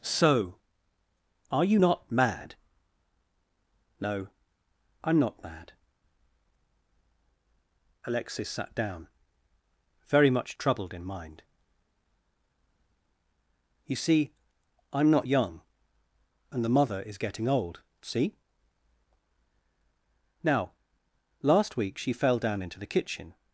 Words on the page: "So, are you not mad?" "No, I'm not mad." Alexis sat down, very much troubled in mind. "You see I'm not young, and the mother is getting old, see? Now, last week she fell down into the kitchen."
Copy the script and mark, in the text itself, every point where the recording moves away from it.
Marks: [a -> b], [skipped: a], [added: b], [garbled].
"So, are you not mad?" "No, I'm not mad." Alexis sat down, very much troubled in mind. "You see I'm not young, and the mother is getting old, see? Now, last week she fell down into the kitchen."